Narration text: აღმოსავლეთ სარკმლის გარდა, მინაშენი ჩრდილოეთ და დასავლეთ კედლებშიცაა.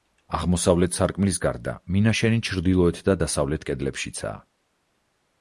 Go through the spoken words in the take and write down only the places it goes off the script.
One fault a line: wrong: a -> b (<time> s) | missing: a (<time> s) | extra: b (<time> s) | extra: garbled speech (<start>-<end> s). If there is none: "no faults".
no faults